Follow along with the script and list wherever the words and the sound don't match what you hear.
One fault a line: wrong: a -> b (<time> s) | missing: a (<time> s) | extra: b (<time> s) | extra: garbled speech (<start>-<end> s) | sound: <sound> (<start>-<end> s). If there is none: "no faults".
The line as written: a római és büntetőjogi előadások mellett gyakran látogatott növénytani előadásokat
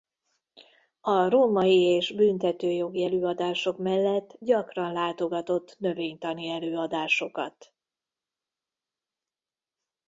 no faults